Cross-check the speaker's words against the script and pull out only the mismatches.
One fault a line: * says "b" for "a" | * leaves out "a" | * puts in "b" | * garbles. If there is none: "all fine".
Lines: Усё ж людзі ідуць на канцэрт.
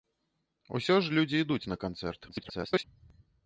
* garbles